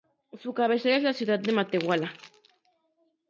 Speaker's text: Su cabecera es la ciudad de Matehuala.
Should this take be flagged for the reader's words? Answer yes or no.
no